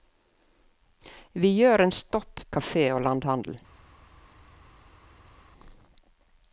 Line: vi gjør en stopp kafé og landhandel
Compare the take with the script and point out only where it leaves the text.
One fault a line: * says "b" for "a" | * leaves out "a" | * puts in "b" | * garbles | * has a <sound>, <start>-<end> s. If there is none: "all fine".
all fine